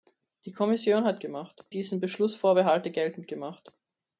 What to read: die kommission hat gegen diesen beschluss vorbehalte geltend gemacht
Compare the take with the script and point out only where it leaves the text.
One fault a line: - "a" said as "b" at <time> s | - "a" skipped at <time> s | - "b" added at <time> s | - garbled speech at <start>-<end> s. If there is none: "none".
- "gegen" said as "gemacht" at 1.2 s